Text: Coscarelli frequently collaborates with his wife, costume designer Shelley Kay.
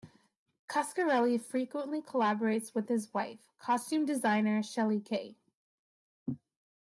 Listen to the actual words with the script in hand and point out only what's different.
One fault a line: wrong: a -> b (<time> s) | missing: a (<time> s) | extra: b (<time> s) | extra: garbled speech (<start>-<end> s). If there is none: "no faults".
no faults